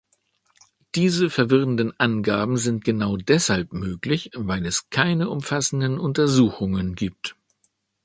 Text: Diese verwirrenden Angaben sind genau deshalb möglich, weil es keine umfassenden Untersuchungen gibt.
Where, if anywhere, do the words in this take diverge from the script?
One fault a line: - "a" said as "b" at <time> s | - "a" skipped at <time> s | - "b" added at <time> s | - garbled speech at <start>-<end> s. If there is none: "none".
none